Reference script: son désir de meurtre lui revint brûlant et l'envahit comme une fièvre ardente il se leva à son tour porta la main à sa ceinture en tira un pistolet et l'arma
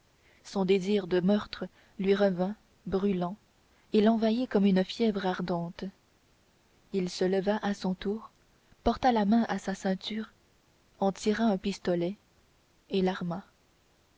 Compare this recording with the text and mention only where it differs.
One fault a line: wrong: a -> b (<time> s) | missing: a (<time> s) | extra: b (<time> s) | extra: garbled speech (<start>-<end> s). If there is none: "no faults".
no faults